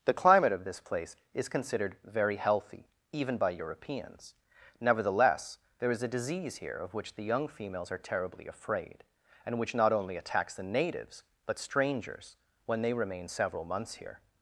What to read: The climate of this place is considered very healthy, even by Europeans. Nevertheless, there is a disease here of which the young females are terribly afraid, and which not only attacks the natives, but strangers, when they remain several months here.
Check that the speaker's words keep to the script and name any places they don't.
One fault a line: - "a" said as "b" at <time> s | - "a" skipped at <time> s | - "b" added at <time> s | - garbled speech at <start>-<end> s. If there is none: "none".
none